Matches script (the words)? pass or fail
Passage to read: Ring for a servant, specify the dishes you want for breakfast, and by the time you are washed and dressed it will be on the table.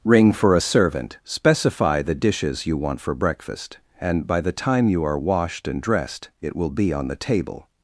pass